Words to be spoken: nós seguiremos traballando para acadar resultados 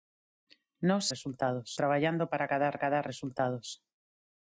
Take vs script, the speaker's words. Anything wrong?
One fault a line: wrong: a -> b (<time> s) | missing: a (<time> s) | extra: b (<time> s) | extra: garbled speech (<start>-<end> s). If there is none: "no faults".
wrong: seguiremos -> resultados (1.1 s)
extra: acadar (2.7 s)